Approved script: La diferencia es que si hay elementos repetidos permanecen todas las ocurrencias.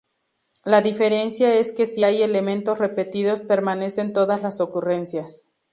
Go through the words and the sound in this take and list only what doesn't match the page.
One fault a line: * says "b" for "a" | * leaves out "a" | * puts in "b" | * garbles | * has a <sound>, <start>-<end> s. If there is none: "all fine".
all fine